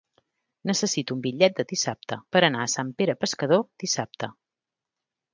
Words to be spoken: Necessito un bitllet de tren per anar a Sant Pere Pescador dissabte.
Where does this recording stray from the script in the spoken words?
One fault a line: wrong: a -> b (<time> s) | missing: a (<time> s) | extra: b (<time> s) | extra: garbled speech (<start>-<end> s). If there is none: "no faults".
wrong: tren -> dissabte (1.8 s)